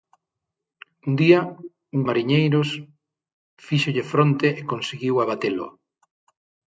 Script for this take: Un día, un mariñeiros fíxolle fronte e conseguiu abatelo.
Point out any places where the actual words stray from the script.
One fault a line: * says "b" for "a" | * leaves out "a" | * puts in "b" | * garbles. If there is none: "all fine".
all fine